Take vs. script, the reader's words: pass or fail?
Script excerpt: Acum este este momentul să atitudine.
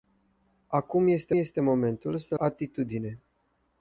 pass